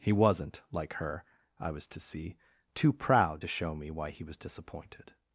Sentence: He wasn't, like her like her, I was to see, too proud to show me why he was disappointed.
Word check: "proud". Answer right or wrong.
right